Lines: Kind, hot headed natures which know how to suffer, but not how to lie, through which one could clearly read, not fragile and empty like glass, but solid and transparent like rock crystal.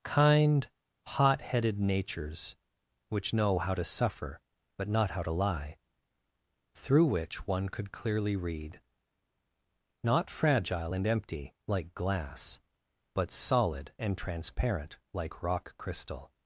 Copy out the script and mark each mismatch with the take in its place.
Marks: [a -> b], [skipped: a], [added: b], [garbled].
Kind, hot headed natures which know how to suffer, but not how to lie, through which one could clearly read, not fragile and empty like glass, but solid and transparent like rock crystal.